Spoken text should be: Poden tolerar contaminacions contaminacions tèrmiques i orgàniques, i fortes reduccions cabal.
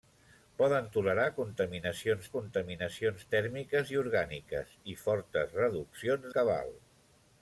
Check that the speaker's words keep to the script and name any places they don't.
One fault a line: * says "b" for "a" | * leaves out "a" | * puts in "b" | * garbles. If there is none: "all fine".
all fine